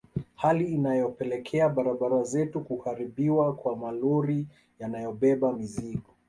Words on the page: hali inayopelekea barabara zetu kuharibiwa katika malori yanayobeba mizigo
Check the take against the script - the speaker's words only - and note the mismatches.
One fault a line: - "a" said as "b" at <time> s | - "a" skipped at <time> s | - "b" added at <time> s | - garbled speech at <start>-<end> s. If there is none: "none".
- "katika" said as "kwa" at 3.5 s